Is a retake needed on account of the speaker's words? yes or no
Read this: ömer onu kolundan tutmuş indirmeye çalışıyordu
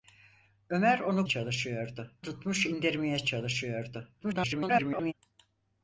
yes